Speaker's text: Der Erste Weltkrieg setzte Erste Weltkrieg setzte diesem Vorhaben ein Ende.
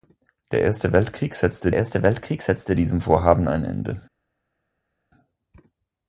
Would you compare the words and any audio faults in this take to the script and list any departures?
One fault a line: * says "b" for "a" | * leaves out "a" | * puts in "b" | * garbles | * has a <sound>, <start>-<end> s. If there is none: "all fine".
all fine